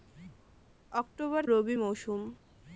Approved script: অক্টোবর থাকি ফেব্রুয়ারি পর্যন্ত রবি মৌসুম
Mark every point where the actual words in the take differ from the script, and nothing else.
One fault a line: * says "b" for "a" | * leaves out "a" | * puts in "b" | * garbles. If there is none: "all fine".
* leaves out "থাকি ফেব্রুয়ারি পর্যন্ত"